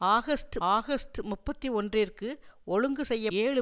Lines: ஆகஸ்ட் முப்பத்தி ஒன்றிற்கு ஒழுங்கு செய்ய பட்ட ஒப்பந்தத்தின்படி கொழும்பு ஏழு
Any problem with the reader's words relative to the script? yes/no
yes